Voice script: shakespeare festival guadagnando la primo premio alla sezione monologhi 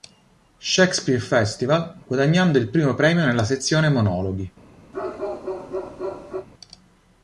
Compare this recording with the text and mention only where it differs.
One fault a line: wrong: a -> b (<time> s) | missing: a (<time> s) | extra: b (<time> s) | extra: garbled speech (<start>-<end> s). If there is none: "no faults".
wrong: la -> il (2.6 s)
wrong: alla -> nella (3.2 s)